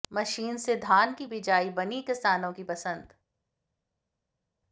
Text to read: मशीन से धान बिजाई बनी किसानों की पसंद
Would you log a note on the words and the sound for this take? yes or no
yes